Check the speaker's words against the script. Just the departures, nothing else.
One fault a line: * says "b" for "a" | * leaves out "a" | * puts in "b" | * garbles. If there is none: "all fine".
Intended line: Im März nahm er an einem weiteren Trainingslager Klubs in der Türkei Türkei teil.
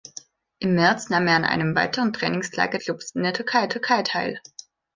all fine